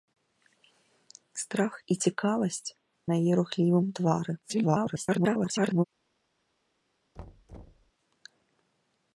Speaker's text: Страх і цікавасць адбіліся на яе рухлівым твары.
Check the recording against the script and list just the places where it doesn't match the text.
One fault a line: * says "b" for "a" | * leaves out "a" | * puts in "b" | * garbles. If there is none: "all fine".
* leaves out "адбіліся"
* garbles